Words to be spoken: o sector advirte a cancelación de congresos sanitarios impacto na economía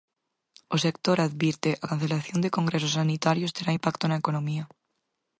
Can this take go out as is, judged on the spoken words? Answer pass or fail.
fail